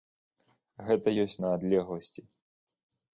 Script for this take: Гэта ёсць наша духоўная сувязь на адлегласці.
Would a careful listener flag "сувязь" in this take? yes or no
yes